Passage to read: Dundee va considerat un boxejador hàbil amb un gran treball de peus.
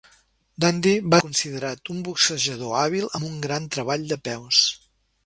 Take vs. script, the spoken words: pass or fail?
pass